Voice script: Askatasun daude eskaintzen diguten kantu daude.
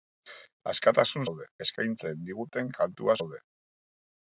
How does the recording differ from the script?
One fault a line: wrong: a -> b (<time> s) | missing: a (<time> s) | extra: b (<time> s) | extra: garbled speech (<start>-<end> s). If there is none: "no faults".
no faults